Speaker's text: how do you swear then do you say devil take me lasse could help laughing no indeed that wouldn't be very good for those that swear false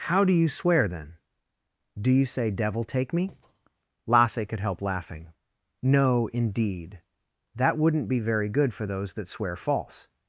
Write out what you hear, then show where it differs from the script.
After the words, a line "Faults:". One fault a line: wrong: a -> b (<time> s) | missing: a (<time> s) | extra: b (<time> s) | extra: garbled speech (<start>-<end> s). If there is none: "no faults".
how do you swear then do you say devil take me lasse could help laughing no indeed that wouldn't be very good for those that swear false
Faults:
no faults